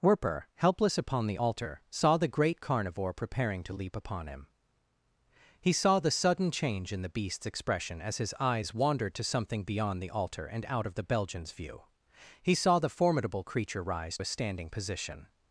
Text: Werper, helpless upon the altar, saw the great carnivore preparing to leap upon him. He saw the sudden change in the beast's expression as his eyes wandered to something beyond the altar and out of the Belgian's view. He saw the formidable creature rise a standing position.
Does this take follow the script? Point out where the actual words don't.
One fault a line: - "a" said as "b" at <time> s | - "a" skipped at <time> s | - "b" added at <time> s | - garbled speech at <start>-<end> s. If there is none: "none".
none